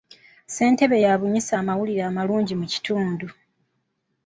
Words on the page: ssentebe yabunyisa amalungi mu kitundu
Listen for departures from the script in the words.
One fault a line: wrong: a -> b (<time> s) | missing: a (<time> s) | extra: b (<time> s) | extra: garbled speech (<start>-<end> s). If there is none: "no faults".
extra: amawulire (1.6 s)